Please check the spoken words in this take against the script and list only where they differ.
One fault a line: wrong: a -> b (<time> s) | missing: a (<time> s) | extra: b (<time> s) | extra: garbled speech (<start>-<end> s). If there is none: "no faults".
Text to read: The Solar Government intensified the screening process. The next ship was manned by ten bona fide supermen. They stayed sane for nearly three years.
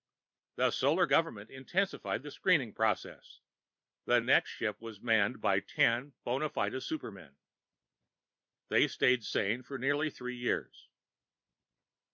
no faults